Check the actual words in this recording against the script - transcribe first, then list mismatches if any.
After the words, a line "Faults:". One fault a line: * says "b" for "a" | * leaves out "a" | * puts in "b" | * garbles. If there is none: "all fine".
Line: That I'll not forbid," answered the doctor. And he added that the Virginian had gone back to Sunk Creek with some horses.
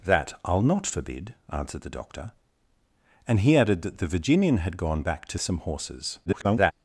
That I'll not forbid," answered the doctor. And he added that the Virginian had gone back to Some horses. [garbled]
Faults:
* leaves out "Sunk Creek with"
* garbles